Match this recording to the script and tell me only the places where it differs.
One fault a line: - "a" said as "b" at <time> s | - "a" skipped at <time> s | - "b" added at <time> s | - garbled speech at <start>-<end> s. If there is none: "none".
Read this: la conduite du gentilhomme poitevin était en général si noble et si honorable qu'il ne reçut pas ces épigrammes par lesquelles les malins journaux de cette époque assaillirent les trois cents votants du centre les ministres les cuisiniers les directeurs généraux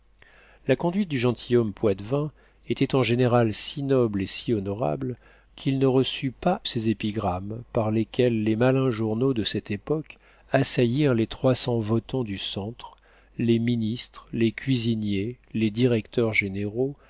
none